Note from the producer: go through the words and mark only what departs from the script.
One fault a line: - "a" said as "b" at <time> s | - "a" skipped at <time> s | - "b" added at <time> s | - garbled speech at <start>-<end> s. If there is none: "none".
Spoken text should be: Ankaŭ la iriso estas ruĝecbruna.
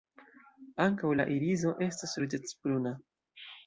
none